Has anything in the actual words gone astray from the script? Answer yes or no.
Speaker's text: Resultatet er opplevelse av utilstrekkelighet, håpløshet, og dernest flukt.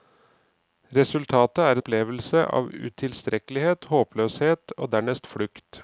no